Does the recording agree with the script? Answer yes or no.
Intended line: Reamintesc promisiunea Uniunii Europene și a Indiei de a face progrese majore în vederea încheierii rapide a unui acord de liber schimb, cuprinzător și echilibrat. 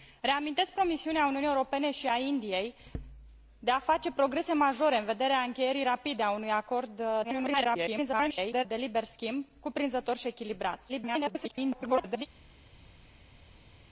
no